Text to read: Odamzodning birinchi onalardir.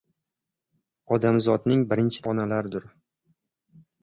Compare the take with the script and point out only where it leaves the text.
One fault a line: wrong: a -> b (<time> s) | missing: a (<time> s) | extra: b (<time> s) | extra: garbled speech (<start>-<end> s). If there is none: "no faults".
no faults